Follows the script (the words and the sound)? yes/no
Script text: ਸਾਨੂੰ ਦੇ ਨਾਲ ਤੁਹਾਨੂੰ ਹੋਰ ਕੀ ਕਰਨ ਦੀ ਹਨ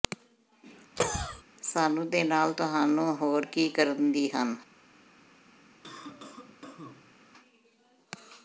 no